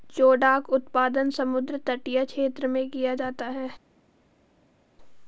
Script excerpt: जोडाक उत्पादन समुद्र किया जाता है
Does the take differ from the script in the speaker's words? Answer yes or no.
yes